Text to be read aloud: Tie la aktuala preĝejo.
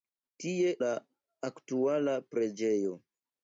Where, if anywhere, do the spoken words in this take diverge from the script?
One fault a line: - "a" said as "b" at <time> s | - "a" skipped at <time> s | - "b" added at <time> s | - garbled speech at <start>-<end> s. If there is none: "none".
none